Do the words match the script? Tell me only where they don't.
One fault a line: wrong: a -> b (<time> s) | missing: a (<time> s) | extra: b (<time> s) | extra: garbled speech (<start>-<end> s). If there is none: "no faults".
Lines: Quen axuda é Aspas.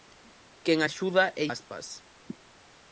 no faults